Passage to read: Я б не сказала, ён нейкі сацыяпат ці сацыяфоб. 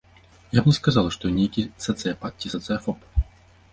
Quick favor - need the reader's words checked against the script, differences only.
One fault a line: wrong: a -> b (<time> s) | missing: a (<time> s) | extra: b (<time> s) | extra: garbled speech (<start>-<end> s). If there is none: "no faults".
extra: што (1.2 s)